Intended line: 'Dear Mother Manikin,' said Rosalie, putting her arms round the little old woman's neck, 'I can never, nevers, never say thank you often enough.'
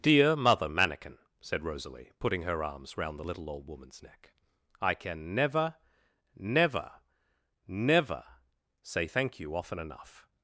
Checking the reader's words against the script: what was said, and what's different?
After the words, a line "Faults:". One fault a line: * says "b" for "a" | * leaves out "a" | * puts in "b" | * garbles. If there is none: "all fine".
'Dear Mother Manikin,' said Rosalie, putting her arms round the little old woman's neck, 'I can never, never, never say thank you often enough.'
Faults:
* says "never" for "nevers"